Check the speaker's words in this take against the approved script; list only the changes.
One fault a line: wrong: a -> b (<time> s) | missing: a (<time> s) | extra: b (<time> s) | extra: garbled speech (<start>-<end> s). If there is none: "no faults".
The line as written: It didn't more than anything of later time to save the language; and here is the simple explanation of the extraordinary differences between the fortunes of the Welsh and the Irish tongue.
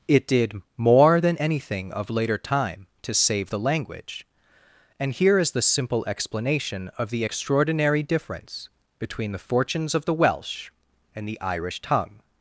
wrong: didn't -> did (0.2 s)
wrong: differences -> difference (8.0 s)